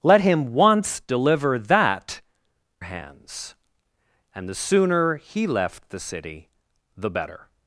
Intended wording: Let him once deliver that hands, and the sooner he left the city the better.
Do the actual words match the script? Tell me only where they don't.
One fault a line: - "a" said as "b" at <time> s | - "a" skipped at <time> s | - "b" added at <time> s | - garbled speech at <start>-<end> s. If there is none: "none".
none